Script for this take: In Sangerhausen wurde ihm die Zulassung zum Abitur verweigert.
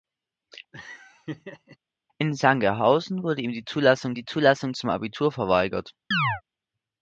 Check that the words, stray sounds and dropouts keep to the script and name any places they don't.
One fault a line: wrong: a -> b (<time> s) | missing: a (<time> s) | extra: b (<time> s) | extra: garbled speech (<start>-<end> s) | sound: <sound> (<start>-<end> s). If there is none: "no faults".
sound: laugh (0.7-1.8 s)
extra: die Zulassung (4.1 s)
sound: chirp (6.1-6.4 s)